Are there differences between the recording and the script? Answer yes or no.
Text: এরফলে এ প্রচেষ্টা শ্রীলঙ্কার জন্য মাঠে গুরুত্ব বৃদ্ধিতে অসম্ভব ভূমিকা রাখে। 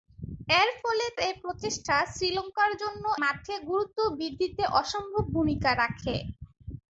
no